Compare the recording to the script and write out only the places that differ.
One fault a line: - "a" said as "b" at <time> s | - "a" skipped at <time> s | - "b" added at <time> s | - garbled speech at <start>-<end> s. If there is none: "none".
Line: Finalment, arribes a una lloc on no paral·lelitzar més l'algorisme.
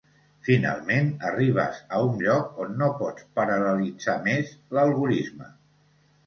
- "una" said as "un" at 2.0 s
- "pots" added at 3.0 s